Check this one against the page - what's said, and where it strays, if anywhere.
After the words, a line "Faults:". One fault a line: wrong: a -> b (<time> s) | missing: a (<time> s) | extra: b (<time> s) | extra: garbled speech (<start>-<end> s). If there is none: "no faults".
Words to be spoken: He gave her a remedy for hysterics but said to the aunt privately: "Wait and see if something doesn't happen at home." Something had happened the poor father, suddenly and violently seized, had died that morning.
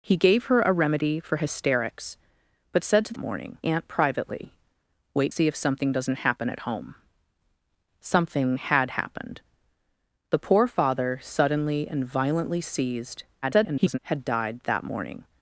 He gave her a remedy for hysterics but said to morning aunt privately: "Wait see if something doesn't happen at home." Something had happened the poor father, suddenly and violently seized, [garbled] had died that morning.
Faults:
wrong: the -> morning (3.2 s)
missing: and (5.3 s)
extra: garbled speech (13.4-14.0 s)